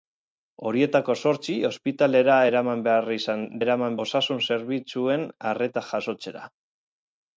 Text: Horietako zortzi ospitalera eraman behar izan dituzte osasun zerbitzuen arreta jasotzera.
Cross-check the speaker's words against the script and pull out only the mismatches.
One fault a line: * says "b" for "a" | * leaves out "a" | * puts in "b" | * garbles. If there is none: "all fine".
* says "eraman" for "dituzte"